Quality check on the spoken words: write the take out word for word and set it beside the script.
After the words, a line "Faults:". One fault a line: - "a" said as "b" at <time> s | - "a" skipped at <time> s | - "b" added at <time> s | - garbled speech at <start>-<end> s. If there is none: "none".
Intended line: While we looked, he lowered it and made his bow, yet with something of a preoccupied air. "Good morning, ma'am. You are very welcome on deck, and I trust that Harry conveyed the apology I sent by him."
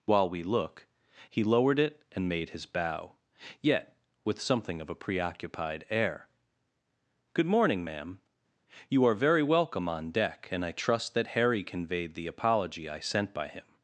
While we look, he lowered it and made his bow, yet with something of a preoccupied air. "Good morning, ma'am. You are very welcome on deck, and I trust that Harry conveyed the apology I sent by him."
Faults:
- "looked" said as "look" at 0.4 s